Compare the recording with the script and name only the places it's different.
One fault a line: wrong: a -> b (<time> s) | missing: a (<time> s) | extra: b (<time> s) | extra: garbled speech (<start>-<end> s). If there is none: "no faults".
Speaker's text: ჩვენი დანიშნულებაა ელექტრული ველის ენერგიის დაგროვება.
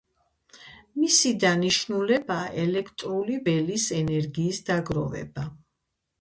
wrong: ჩვენი -> მისი (1.0 s)